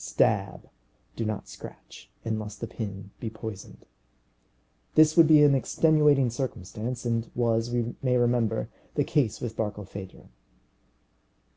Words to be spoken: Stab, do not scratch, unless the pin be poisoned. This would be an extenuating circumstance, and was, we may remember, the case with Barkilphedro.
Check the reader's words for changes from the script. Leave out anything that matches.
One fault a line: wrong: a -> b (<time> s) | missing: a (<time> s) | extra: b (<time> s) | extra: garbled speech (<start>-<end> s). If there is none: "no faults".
no faults